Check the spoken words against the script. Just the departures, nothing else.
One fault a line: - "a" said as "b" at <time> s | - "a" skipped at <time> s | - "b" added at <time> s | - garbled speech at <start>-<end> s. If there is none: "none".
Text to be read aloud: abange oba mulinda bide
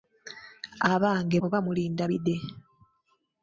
none